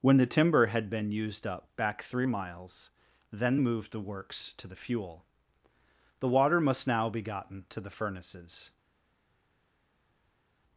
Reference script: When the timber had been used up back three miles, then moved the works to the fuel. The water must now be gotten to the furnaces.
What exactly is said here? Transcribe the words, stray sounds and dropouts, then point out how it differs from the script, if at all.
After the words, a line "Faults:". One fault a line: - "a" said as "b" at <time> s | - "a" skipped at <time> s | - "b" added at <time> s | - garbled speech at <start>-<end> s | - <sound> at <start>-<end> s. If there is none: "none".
When the timber had been used up back three miles, then moved the works to the fuel. The water must now be gotten to the furnaces.
Faults:
none